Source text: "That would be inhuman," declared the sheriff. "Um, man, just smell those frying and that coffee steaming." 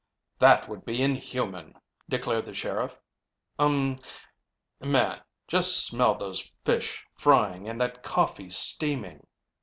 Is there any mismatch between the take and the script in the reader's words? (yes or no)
yes